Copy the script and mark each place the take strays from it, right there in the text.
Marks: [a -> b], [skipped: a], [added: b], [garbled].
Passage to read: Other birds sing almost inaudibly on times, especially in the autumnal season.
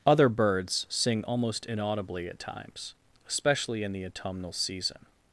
Other birds sing almost inaudibly [on -> at] times, especially in the autumnal season.